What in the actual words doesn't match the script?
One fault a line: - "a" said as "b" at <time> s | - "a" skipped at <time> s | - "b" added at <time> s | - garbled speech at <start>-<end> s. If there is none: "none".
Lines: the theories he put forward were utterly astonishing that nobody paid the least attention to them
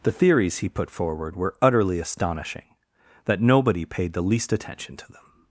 none